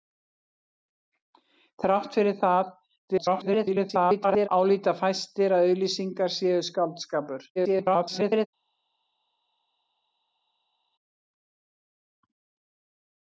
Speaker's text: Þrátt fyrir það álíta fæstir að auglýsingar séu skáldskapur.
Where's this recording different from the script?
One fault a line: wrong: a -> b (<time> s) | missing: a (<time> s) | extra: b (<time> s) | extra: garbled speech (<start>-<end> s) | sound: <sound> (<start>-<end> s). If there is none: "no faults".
extra: garbled speech (3.1-4.5 s)
extra: garbled speech (7.6-8.5 s)